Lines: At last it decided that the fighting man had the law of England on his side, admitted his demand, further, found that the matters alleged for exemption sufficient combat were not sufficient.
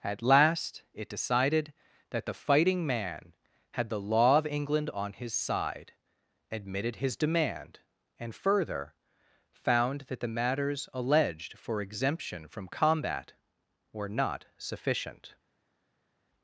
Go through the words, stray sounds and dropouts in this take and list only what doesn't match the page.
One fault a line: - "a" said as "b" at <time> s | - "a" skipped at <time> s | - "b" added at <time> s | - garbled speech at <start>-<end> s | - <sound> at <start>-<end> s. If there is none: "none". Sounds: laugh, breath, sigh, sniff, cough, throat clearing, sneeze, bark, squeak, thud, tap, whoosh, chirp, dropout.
- "and" added at 8.2 s
- "sufficient" said as "from" at 12.5 s